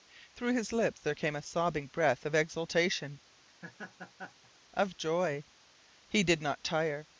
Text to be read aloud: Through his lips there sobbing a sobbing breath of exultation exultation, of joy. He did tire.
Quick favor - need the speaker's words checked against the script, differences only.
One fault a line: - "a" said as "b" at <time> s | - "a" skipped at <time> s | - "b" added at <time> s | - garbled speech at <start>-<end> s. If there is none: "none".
- "sobbing" said as "came" at 1.1 s
- "exultation" skipped at 3.2 s
- "not" added at 6.4 s